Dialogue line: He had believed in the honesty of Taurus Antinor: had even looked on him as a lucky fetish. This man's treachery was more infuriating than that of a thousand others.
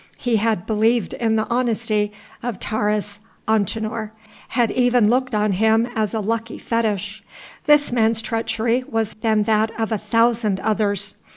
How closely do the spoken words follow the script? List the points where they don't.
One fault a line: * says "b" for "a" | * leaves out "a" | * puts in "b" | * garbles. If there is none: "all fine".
* leaves out "more infuriating"